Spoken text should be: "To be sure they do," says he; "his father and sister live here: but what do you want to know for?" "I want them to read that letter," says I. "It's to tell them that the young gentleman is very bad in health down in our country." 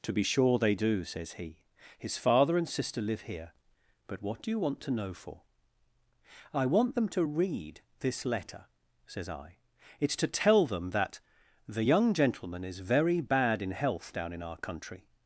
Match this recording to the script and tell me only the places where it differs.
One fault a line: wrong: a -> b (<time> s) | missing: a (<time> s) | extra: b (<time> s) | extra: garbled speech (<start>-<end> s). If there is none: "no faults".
wrong: that -> this (8.0 s)